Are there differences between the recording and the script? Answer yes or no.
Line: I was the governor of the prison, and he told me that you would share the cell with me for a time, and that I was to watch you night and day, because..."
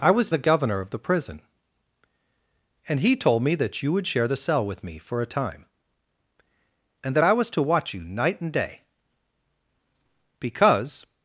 no